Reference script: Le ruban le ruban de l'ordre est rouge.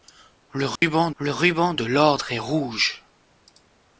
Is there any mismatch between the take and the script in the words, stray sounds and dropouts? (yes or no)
yes